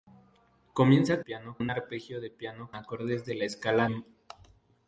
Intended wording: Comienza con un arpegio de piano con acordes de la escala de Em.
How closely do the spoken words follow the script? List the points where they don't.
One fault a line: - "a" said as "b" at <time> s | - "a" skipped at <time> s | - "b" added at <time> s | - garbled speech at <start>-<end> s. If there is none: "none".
- "con" said as "piano" at 1.2 s
- "con" skipped at 2.7 s
- "de" skipped at 3.9 s